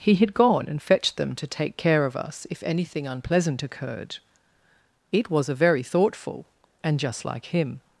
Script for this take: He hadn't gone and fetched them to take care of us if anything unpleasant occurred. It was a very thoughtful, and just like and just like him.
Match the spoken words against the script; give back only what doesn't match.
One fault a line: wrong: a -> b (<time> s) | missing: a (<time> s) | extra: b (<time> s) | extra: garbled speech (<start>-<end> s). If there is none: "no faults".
wrong: hadn't -> had (0.1 s)
missing: and just like (7.5 s)